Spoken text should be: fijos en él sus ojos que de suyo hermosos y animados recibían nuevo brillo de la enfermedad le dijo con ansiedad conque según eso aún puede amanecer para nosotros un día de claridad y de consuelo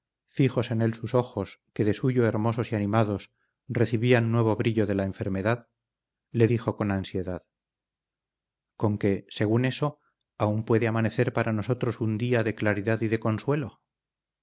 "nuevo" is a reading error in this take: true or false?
false